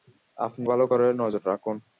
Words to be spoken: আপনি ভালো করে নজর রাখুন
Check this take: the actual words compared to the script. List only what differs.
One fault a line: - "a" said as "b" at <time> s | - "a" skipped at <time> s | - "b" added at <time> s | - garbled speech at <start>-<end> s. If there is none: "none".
none